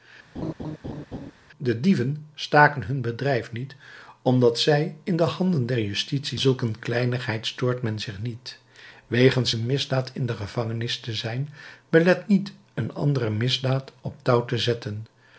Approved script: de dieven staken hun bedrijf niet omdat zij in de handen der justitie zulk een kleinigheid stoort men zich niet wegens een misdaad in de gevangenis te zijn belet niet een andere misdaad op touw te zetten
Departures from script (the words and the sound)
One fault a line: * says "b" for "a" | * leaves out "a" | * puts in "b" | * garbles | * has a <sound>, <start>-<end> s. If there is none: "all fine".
* has a laugh, 0.3-1.3 s